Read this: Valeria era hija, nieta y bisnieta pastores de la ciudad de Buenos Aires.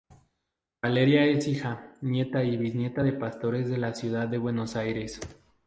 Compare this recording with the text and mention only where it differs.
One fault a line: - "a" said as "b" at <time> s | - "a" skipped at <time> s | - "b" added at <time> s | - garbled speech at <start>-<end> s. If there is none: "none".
- "era" said as "es" at 1.2 s
- "de" added at 3.0 s